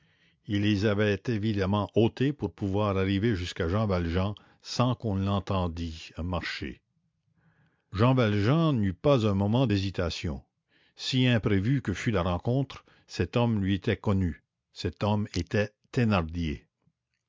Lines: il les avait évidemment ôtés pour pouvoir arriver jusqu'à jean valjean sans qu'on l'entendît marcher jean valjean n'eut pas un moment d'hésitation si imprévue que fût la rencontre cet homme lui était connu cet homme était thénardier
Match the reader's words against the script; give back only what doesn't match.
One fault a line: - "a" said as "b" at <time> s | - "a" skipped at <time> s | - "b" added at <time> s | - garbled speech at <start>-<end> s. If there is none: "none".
none